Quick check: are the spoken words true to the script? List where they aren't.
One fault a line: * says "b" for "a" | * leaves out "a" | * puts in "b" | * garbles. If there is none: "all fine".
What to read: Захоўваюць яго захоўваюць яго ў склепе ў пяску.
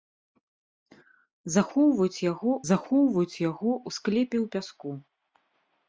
all fine